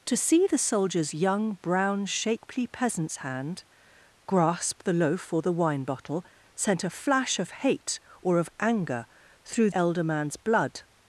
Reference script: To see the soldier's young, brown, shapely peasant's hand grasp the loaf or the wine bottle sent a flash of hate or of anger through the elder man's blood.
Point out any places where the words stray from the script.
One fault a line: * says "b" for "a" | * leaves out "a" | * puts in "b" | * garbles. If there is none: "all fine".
* leaves out "the"